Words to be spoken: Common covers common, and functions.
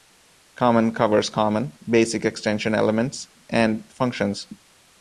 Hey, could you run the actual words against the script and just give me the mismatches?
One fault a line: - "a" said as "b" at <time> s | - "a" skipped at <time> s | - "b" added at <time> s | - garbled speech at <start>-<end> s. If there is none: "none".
- "basic extension elements" added at 1.9 s